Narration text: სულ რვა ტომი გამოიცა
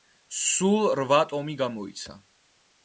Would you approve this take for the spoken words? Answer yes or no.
yes